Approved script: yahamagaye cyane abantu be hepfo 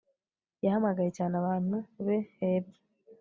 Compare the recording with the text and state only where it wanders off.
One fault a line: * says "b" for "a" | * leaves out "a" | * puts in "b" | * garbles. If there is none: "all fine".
all fine